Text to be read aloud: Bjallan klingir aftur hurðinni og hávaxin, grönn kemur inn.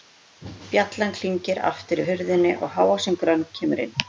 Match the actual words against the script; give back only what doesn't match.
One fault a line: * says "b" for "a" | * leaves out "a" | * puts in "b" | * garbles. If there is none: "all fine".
all fine